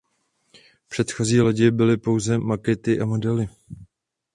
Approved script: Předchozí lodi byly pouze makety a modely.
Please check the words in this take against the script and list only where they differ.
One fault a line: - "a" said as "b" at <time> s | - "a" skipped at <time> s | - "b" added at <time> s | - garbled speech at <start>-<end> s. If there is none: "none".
none